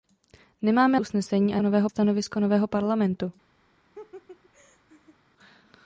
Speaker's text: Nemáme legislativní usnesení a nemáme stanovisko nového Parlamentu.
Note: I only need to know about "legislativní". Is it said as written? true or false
false